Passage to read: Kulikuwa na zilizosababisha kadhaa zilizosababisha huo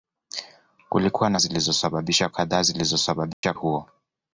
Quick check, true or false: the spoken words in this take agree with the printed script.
true